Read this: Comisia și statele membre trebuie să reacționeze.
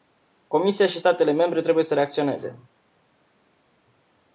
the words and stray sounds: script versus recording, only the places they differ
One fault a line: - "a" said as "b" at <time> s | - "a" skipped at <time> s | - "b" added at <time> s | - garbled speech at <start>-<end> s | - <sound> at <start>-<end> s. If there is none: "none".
none